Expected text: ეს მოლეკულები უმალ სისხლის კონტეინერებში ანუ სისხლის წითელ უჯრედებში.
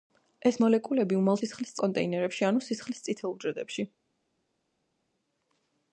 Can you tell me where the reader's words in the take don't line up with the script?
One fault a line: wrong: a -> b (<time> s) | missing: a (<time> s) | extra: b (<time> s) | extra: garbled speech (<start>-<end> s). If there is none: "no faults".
no faults